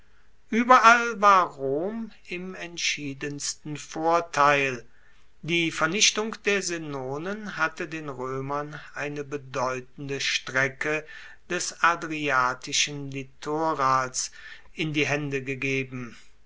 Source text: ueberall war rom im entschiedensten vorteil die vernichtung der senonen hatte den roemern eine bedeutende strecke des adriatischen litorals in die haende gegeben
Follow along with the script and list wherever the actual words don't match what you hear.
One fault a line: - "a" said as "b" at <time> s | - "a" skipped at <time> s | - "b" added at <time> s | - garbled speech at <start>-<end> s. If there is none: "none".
none